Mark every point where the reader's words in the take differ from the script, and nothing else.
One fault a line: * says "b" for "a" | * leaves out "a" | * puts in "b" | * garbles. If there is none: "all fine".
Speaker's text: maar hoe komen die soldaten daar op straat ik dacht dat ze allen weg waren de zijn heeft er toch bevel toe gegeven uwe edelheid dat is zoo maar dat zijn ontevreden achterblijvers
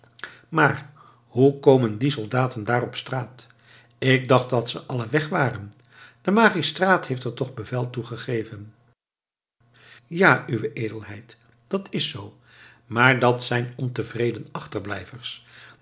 * says "magistraat" for "zijn"
* puts in "ja"